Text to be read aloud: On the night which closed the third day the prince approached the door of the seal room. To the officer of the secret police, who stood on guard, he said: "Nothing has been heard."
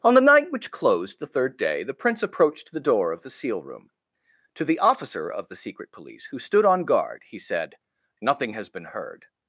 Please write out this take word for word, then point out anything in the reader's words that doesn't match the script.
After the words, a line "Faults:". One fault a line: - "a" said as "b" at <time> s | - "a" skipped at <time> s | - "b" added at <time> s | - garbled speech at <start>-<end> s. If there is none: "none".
On the night which closed the third day the prince approached the door of the seal room. To the officer of the secret police, who stood on guard, he said: "Nothing has been heard."
Faults:
none